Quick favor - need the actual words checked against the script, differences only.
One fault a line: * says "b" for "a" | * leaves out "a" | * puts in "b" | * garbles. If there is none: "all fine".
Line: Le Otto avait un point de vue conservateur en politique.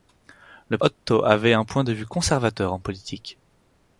all fine